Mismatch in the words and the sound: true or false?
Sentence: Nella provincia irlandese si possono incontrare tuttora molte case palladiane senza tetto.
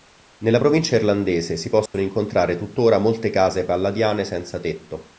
true